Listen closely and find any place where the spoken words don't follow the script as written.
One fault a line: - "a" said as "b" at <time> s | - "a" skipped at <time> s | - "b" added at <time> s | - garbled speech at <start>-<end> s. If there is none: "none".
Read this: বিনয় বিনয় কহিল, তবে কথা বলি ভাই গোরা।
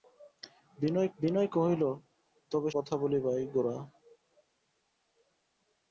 none